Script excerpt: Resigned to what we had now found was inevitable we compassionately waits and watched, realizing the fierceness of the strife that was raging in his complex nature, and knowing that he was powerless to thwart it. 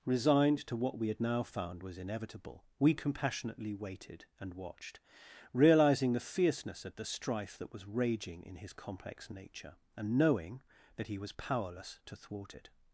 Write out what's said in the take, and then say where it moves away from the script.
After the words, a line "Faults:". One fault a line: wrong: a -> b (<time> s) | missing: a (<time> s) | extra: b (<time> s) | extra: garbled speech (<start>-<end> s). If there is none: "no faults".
Resigned to what we had now found was inevitable we compassionately waited and watched, realizing the fierceness of the strife that was raging in his complex nature, and knowing that he was powerless to thwart it.
Faults:
wrong: waits -> waited (3.7 s)